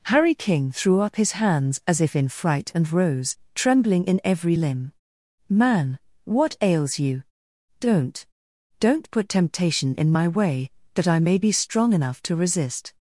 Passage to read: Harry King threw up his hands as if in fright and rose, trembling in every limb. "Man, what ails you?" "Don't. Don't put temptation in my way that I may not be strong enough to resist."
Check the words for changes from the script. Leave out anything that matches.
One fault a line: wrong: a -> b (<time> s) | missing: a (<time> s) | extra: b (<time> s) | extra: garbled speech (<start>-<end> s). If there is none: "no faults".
missing: not (11.4 s)